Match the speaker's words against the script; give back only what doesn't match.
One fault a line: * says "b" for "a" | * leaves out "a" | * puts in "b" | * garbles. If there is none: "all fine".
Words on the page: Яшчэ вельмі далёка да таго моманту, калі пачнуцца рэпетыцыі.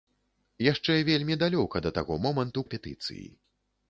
* leaves out "калі пачнуцца"